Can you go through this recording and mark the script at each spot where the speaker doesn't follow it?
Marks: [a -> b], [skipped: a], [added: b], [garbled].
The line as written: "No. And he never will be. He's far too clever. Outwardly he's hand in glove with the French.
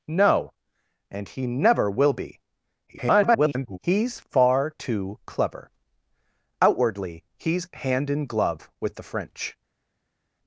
"No. And he never will be. [garbled] He's far too clever. Outwardly he's hand in glove with the French.